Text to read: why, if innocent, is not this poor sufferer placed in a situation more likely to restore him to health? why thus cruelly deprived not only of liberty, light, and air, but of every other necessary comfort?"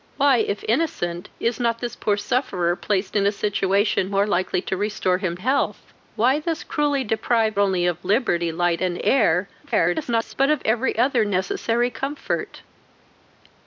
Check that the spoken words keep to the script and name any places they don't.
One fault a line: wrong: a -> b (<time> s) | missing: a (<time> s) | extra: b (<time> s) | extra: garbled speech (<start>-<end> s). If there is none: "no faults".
missing: to (5.4 s)
missing: not (7.6 s)
extra: garbled speech (9.6-10.3 s)